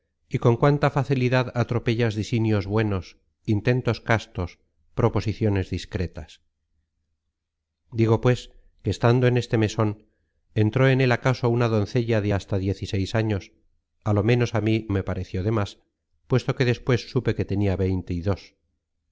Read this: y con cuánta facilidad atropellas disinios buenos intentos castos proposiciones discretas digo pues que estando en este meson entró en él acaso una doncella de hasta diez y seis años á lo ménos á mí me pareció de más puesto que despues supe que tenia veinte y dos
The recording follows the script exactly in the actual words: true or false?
true